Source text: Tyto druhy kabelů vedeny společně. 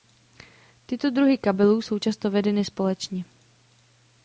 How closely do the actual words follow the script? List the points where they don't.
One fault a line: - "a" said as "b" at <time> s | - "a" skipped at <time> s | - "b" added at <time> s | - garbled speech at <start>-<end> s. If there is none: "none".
- "jsou často" added at 1.8 s